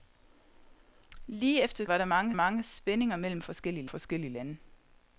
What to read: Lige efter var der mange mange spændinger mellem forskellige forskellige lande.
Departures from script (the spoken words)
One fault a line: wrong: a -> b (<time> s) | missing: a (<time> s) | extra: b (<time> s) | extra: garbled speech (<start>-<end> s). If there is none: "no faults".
no faults